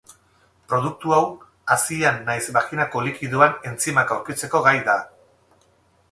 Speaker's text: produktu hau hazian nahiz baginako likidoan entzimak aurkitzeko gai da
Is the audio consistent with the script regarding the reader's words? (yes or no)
yes